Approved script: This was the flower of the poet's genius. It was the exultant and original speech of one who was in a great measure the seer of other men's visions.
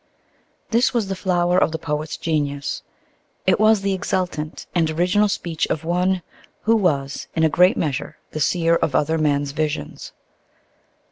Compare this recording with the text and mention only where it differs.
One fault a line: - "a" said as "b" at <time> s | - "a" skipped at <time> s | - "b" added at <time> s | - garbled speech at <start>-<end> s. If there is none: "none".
none